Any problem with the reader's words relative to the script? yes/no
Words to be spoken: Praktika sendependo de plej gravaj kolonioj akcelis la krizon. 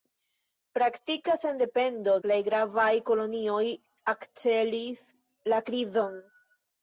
yes